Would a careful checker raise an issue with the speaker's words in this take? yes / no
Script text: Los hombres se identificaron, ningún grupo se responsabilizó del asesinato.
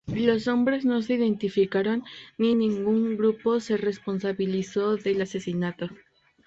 yes